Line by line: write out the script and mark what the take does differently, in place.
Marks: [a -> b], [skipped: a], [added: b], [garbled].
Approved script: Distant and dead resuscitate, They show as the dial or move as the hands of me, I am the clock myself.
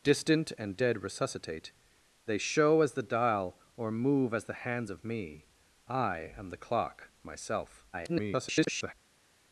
Distant and dead resuscitate, They show as the dial or move as the hands of me, I am the clock myself. [garbled]